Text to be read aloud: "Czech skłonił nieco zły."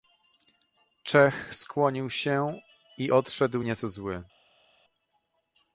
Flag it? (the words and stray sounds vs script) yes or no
yes